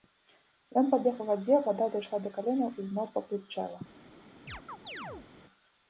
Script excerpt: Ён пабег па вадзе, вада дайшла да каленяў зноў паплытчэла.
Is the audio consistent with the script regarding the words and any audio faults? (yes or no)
no